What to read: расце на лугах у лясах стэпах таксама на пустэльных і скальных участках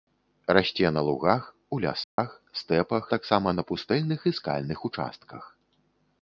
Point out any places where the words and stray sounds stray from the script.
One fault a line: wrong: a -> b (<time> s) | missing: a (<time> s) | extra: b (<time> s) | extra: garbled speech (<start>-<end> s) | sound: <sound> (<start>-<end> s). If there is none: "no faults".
sound: dropout (2.0-2.2 s)